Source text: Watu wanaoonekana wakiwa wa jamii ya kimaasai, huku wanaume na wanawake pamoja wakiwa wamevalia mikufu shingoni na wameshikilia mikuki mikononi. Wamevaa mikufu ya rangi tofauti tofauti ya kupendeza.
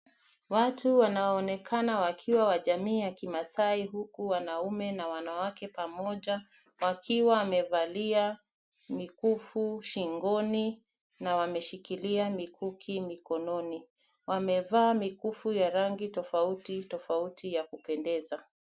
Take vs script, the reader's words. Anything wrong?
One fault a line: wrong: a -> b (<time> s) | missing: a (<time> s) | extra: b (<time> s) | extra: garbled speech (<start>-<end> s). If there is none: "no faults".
no faults